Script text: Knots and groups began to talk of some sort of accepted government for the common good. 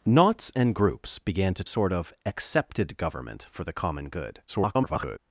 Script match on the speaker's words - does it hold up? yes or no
no